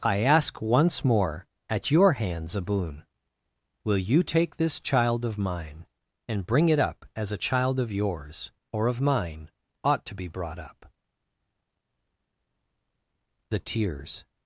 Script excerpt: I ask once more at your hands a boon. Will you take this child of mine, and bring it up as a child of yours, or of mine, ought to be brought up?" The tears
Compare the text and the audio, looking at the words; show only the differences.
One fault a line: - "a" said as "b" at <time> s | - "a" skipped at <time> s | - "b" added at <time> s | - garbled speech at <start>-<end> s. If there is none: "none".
none